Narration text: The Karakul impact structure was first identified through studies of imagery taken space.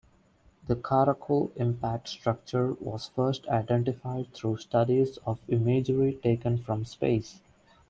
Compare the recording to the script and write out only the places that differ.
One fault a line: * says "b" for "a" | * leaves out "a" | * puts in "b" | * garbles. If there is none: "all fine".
* puts in "from"